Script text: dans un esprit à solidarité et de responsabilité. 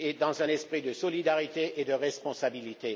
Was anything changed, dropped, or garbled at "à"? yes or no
yes